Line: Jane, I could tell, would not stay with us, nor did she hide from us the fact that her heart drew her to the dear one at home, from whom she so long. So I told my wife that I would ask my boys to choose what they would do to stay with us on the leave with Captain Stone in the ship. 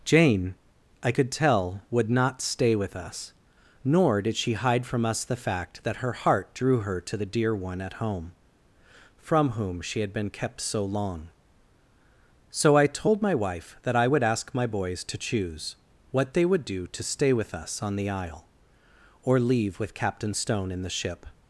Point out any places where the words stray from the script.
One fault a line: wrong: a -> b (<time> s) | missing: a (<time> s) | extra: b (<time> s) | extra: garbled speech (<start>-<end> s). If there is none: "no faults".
extra: had been kept (10.0 s)
extra: isle or (18.1 s)